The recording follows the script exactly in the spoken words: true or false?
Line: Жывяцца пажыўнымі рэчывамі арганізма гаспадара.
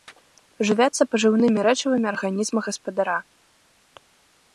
true